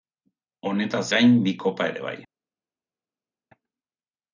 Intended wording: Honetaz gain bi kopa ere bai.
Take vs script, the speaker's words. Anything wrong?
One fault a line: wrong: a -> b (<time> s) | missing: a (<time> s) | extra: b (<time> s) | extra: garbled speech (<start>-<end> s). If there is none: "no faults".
no faults